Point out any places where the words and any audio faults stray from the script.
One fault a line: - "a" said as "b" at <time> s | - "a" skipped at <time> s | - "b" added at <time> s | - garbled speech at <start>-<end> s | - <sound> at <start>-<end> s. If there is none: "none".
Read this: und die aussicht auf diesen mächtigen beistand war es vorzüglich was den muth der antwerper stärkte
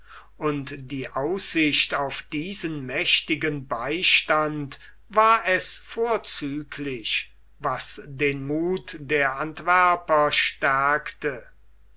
none